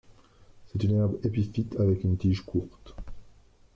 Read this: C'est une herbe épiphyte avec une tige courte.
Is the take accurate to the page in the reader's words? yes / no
yes